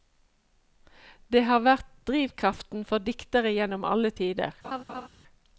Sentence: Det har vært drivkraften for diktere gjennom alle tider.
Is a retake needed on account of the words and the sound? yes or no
yes